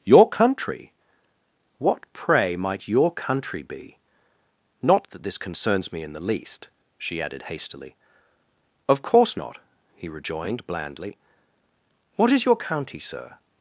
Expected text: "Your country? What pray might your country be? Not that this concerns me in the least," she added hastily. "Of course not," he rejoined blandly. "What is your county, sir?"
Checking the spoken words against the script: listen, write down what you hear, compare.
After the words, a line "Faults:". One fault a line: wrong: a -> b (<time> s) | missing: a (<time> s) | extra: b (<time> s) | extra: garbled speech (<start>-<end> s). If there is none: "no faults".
"Your country? What pray might your country be? Not that this concerns me in the least," she added hastily. "Of course not," he rejoined blandly. "What is your county, sir?"
Faults:
no faults